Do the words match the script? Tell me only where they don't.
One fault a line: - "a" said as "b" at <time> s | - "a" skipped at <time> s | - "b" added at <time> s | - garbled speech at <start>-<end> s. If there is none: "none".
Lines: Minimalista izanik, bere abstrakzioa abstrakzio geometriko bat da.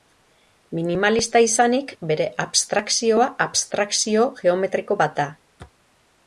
none